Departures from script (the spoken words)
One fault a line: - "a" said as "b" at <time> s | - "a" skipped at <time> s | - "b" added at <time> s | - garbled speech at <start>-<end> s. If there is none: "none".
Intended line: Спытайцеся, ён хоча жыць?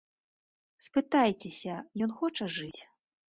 none